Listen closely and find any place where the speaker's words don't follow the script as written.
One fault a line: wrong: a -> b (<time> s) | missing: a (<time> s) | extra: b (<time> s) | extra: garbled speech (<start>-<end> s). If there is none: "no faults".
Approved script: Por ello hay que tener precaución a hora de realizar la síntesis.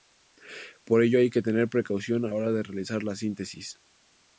no faults